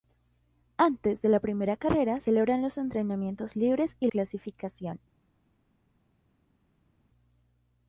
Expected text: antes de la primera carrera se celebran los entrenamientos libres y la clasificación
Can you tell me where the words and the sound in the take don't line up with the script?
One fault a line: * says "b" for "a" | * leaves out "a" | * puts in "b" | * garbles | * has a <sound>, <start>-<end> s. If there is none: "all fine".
* leaves out "se"
* leaves out "la"